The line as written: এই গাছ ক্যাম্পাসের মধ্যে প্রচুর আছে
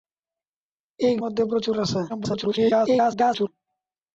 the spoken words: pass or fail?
fail